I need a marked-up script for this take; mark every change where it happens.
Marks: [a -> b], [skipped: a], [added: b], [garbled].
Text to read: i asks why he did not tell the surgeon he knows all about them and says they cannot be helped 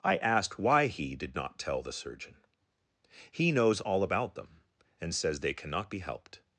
i [asks -> asked] why he did not tell the surgeon he knows all about them and says they cannot be helped